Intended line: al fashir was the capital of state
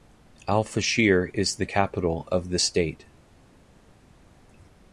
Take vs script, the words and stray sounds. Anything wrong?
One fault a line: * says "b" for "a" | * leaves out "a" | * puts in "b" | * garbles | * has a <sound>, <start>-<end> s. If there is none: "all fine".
* says "is" for "was"
* puts in "the"